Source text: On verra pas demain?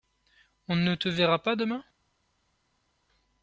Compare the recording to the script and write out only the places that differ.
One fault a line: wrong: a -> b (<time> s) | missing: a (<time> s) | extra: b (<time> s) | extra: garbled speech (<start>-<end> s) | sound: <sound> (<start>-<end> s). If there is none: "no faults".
extra: ne te (0.8 s)